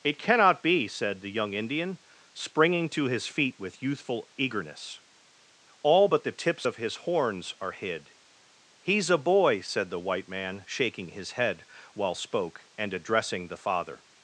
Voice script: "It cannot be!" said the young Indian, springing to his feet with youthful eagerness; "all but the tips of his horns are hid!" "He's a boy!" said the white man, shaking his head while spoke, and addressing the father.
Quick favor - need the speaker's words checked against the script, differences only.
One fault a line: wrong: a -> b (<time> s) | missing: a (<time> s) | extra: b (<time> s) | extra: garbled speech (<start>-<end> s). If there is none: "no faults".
no faults